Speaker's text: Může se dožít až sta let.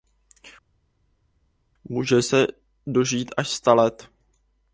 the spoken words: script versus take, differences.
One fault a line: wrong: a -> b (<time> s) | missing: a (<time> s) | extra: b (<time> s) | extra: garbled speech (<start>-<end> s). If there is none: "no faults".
no faults